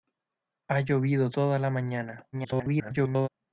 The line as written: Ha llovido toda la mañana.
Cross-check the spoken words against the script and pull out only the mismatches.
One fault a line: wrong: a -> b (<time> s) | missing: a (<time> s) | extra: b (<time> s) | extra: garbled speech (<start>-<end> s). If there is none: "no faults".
extra: garbled speech (2.3-3.3 s)